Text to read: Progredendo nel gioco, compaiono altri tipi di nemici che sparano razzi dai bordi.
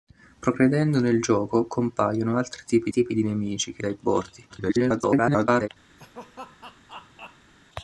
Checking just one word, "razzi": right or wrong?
wrong